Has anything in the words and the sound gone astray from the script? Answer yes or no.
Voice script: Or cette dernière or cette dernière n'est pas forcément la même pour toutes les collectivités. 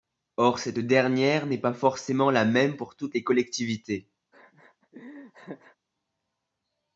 yes